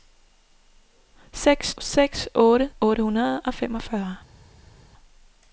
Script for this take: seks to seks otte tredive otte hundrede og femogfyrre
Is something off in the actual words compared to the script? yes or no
yes